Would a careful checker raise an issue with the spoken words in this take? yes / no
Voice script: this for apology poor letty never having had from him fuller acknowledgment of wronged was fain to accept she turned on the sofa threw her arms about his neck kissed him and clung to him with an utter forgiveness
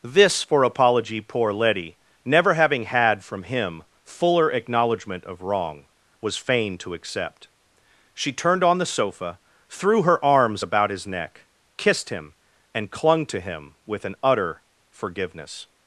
yes